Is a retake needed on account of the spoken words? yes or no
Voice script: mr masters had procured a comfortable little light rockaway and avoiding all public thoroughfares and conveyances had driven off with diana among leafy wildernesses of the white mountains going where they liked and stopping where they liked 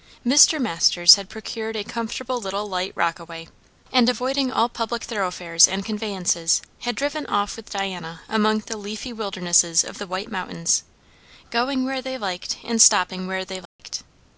yes